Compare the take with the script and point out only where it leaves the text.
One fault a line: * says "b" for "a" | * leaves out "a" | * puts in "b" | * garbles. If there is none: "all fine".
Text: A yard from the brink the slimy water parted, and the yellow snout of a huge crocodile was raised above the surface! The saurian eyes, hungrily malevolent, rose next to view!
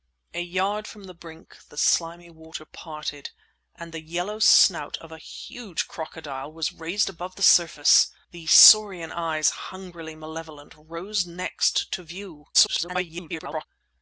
* garbles